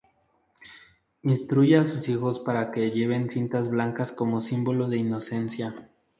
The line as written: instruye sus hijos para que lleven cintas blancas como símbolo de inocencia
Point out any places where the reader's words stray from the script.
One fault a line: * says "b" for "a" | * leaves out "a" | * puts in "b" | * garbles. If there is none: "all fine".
* puts in "a"